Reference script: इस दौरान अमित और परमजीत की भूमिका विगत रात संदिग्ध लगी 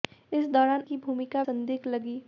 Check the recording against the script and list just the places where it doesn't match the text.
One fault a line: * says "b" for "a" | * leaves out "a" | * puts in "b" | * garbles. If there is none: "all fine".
* leaves out "अमित और परमजीत"
* leaves out "विगत रात"